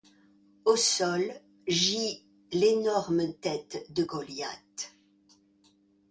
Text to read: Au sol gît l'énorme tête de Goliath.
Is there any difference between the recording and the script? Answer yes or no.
no